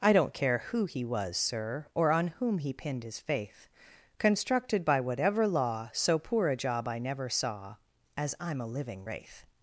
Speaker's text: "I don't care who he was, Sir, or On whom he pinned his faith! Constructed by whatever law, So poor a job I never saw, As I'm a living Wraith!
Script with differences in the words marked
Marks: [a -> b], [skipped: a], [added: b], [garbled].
"I don't care who he was, Sir, or On whom he pinned his faith! Constructed by whatever law, So poor a job I never saw, As I'm a living Wraith!